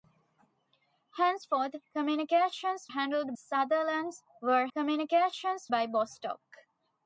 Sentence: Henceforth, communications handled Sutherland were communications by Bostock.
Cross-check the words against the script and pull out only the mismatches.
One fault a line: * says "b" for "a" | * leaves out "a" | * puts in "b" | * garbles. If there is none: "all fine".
all fine